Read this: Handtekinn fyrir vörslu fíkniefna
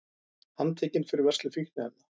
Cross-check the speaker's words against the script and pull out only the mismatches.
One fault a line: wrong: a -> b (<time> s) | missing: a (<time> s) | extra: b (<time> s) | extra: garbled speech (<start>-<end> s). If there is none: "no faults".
no faults